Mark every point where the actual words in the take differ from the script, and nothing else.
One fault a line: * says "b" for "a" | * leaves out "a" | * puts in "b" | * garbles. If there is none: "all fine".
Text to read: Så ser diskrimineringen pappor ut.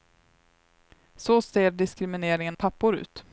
all fine